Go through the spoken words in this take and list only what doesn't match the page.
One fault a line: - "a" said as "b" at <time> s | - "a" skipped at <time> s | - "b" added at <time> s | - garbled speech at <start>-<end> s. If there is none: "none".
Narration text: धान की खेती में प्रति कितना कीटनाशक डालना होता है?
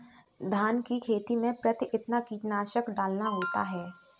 none